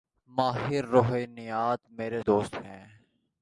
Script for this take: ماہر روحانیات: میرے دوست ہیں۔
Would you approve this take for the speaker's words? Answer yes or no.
yes